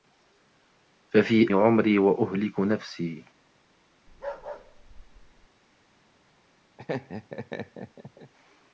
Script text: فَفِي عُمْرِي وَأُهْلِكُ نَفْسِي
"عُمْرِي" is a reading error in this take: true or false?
false